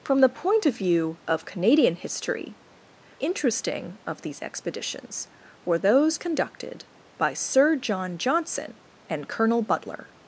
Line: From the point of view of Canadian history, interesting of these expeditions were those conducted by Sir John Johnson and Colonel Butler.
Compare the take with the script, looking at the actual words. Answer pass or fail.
pass